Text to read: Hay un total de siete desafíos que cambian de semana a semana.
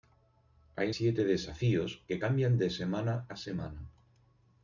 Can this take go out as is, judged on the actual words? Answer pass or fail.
fail